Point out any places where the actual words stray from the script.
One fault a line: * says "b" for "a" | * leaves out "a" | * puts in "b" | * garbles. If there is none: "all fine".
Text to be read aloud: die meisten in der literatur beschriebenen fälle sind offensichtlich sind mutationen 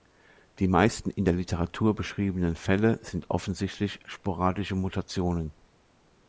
* says "sporadische" for "sind"